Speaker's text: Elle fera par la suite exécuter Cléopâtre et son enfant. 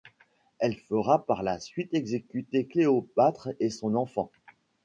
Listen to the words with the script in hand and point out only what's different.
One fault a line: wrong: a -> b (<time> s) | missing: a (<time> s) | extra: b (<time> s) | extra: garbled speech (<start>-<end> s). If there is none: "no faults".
no faults